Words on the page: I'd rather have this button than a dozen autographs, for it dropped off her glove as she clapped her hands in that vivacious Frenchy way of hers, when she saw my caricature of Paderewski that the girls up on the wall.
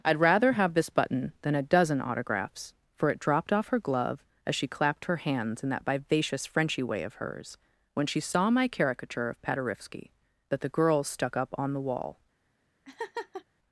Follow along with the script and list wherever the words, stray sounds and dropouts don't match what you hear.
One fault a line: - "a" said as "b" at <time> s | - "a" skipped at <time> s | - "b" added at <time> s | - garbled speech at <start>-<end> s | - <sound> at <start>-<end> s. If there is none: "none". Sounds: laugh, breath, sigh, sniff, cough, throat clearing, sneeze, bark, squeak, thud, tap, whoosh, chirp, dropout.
- "stuck" added at 11.1 s
- laugh at 12.8-13.4 s